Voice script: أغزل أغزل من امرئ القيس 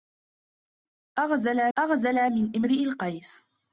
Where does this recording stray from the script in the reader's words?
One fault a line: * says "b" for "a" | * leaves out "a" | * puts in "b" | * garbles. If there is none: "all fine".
all fine